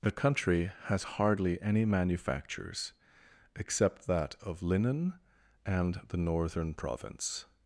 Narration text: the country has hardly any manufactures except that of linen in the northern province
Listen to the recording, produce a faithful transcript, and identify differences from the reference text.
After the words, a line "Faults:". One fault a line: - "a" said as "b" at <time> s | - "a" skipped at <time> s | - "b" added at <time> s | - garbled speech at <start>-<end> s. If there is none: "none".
the country has hardly any manufactures except that of linen and the northern province
Faults:
- "in" said as "and" at 5.6 s